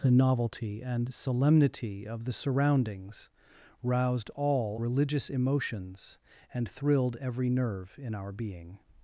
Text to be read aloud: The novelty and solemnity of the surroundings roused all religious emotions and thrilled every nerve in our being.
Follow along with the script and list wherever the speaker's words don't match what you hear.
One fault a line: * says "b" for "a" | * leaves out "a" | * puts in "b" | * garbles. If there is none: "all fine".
all fine